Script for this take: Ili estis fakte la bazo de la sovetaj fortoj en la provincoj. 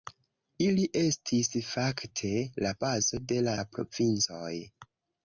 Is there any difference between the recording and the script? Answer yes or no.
yes